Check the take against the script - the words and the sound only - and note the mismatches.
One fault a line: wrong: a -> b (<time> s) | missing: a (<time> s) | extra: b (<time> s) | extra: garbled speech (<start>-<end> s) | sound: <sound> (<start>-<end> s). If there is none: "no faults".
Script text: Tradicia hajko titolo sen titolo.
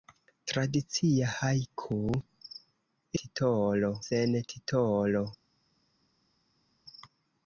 no faults